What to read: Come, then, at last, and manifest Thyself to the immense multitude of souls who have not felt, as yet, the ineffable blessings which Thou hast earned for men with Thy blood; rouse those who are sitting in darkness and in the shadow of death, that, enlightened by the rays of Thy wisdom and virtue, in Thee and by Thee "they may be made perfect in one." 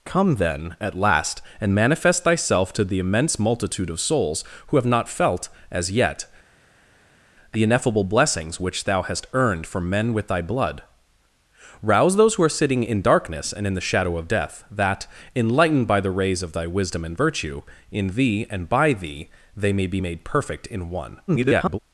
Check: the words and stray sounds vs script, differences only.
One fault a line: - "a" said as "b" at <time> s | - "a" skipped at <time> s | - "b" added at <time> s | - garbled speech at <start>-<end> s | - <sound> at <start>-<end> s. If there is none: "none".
- garbled speech at 21.3-21.8 s